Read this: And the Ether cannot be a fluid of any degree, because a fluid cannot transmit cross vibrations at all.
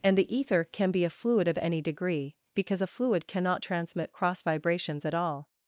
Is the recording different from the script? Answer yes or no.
yes